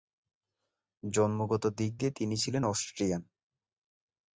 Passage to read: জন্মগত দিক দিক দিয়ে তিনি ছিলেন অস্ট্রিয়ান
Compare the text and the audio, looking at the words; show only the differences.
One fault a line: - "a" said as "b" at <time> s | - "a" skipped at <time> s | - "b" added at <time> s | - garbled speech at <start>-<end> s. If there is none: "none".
- "দিক" skipped at 1.9 s